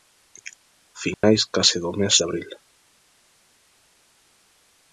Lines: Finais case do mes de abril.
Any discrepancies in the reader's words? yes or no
no